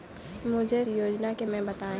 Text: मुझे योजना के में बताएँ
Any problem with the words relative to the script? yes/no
no